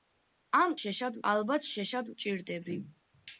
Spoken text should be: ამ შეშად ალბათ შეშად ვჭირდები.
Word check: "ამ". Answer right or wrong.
right